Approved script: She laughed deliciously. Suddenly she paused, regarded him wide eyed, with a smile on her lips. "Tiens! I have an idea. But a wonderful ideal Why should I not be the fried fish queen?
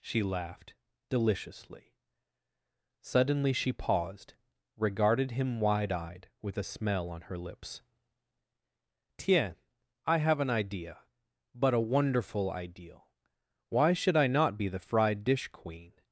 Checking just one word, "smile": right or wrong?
wrong